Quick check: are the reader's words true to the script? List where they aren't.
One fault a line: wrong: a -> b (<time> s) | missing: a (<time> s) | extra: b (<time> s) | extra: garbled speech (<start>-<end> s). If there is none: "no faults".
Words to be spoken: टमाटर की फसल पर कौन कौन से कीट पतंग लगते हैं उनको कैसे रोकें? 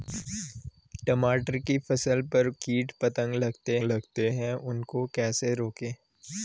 missing: कौन कौन से (2.5 s)
extra: लगते (3.8 s)